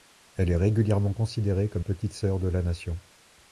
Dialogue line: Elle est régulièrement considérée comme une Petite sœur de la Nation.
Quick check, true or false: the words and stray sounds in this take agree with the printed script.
false